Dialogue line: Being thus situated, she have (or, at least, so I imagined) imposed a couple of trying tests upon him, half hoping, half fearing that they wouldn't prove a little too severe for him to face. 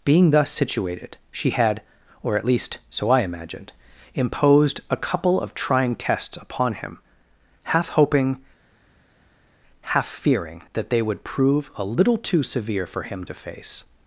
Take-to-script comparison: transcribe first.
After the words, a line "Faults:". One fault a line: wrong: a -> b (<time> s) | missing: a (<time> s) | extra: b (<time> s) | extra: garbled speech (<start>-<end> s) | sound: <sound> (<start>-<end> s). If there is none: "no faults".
Being thus situated, she had (or, at least, so I imagined) imposed a couple of trying tests upon him, half hoping, half fearing that they would prove a little too severe for him to face.
Faults:
wrong: have -> had (1.5 s)
wrong: wouldn't -> would (11.0 s)